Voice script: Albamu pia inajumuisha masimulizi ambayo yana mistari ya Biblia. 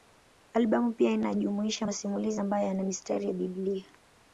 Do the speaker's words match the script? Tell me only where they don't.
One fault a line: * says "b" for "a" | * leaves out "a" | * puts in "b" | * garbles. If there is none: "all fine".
all fine